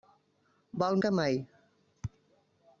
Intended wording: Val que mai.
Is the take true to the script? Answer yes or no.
yes